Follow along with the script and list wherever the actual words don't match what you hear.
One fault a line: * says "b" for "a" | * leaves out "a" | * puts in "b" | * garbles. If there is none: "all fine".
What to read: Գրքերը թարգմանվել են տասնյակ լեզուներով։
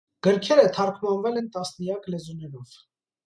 all fine